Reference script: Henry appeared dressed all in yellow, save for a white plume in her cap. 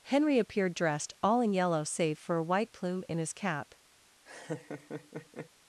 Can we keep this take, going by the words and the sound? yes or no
no